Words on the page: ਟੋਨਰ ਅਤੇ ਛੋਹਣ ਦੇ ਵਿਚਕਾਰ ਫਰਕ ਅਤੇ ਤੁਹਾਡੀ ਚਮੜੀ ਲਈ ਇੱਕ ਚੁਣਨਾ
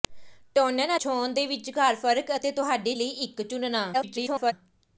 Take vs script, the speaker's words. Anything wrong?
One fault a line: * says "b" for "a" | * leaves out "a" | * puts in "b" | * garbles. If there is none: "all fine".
* leaves out "ਅਤੇ"
* leaves out "ਚਮੜੀ"
* garbles